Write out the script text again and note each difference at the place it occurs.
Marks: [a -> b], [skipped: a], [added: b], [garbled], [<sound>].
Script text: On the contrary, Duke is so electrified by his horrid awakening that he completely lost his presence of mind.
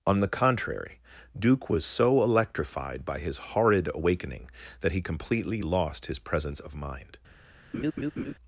On the contrary, Duke [is -> was] so electrified by his horrid awakening that he completely lost his presence of mind. [laugh]